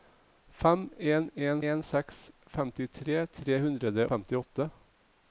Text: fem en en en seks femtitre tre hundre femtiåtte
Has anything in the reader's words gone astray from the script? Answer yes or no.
no